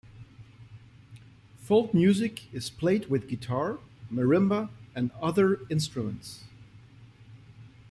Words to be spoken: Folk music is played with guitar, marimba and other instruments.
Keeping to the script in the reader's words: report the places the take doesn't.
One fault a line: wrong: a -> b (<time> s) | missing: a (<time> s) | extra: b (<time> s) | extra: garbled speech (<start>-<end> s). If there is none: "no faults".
no faults